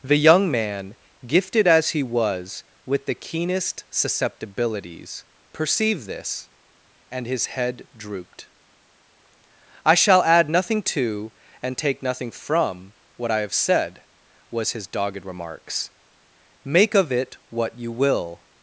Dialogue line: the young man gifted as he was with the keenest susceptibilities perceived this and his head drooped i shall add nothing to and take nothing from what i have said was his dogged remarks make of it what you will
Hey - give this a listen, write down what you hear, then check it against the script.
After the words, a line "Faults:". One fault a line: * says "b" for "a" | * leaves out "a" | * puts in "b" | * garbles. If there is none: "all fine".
the young man gifted as he was with the keenest susceptibilities perceived this and his head drooped i shall add nothing to and take nothing from what i have said was his dogged remarks make of it what you will
Faults:
all fine